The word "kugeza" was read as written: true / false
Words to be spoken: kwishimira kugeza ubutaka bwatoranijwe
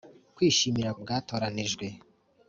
false